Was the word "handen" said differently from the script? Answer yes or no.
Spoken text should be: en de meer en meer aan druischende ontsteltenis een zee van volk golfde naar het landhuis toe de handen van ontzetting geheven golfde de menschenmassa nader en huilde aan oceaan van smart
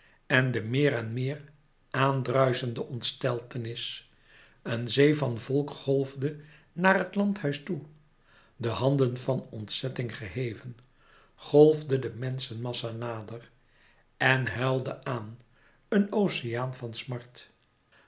no